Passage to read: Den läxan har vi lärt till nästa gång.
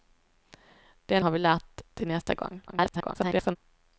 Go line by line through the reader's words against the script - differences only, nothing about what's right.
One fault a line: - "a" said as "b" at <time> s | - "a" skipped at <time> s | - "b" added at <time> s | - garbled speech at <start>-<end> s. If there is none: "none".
- "läxan" skipped at 1.2 s
- garbled speech at 2.7-3.6 s